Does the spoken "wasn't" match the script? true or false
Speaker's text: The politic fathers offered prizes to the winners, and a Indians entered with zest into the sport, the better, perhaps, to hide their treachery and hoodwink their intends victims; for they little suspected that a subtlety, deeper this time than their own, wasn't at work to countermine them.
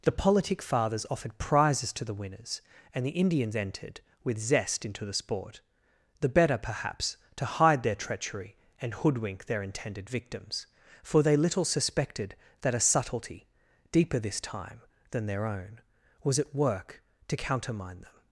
false